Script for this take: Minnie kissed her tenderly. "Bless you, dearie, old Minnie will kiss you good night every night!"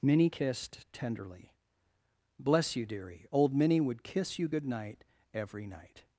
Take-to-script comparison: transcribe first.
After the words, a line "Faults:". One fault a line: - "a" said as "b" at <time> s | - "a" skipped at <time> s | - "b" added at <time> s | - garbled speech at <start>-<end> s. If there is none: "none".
Minnie kissed tenderly. "Bless you, dearie, old Minnie would kiss you good night every night!"
Faults:
- "her" skipped at 0.8 s
- "will" said as "would" at 3.8 s